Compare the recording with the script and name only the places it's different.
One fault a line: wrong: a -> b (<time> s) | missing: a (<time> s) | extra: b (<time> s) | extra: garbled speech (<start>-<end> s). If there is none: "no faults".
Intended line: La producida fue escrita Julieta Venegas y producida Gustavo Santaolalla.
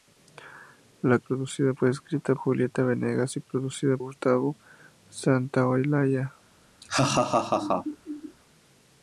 no faults